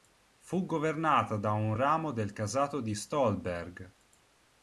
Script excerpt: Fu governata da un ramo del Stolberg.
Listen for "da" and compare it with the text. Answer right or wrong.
right